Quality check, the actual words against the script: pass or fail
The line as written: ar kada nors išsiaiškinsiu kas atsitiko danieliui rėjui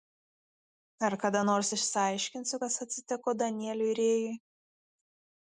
pass